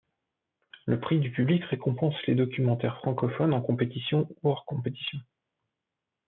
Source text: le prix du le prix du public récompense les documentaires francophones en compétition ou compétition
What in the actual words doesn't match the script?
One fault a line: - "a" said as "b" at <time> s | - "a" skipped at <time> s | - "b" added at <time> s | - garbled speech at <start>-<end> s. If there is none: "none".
- "le prix du" skipped at 1.3 s
- "hors" added at 4.5 s